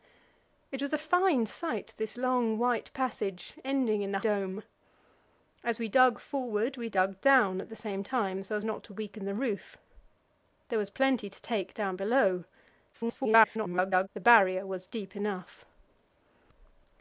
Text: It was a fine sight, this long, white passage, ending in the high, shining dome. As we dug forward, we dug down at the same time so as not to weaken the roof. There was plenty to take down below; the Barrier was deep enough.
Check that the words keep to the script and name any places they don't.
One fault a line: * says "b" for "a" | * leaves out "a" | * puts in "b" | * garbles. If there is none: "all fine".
* leaves out "high shining"
* garbles